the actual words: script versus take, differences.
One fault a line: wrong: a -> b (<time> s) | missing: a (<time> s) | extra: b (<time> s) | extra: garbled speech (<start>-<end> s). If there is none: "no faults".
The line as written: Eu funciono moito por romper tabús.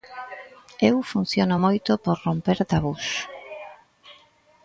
no faults